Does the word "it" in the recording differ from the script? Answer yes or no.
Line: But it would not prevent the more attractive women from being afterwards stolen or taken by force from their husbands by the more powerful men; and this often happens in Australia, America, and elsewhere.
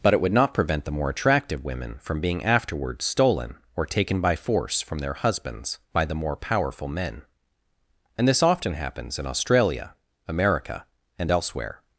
no